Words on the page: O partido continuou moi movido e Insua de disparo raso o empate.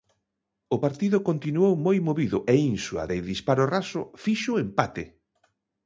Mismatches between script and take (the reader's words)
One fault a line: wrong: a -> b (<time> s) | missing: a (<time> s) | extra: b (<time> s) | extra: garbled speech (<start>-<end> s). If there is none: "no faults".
extra: fixo (4.2 s)